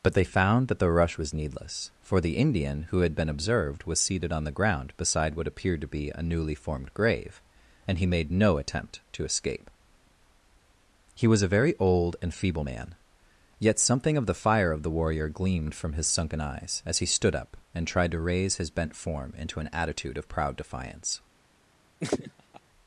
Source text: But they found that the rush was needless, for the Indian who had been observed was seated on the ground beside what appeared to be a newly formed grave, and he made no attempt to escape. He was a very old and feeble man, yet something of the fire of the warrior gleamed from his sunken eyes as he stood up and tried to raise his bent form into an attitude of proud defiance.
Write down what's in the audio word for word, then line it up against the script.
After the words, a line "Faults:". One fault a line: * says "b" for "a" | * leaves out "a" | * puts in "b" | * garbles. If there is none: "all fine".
But they found that the rush was needless, for the Indian who had been observed was seated on the ground beside what appeared to be a newly formed grave, and he made no attempt to escape. He was a very old and feeble man, yet something of the fire of the warrior gleamed from his sunken eyes as he stood up and tried to raise his bent form into an attitude of proud defiance.
Faults:
all fine